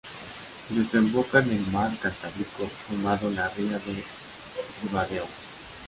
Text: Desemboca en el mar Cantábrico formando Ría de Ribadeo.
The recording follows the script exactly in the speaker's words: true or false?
false